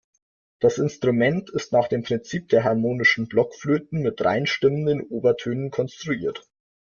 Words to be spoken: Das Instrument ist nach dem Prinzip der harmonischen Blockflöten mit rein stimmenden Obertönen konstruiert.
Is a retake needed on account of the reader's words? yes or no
no